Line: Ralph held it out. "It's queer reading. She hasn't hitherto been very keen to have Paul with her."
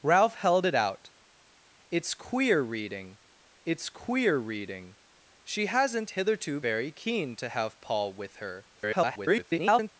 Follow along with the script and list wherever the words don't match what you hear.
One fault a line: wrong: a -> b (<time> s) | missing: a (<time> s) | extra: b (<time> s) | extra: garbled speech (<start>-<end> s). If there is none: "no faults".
extra: it's queer reading (3.6 s)
missing: been (6.6 s)
extra: garbled speech (8.7-9.9 s)